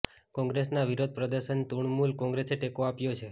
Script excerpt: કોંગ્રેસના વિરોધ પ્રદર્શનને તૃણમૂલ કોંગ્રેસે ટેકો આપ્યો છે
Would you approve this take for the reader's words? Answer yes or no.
yes